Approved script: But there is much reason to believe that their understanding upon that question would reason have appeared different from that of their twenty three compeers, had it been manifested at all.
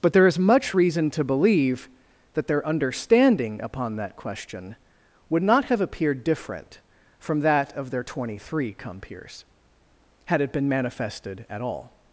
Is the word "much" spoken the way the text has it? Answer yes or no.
yes